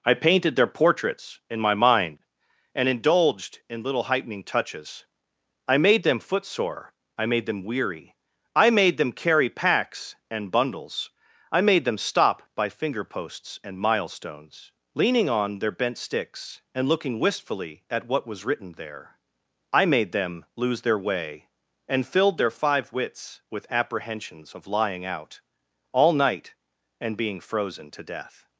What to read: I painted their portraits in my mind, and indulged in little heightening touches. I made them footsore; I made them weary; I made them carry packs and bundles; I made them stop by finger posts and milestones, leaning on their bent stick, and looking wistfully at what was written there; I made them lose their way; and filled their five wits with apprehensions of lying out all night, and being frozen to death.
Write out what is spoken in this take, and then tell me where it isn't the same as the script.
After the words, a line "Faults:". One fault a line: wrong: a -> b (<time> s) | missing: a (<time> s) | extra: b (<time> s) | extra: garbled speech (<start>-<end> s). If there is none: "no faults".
I painted their portraits in my mind, and indulged in little heightening touches. I made them footsore; I made them weary; I made them carry packs and bundles; I made them stop by finger posts and milestones, leaning on their bent sticks, and looking wistfully at what was written there; I made them lose their way; and filled their five wits with apprehensions of lying out all night, and being frozen to death.
Faults:
wrong: stick -> sticks (16.0 s)